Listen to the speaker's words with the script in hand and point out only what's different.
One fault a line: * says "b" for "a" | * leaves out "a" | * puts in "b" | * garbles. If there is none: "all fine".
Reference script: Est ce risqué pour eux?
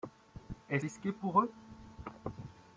* leaves out "ce"